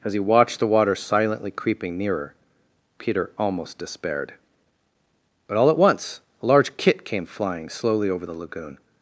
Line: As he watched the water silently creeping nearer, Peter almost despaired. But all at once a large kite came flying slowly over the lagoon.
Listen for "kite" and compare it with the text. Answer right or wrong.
wrong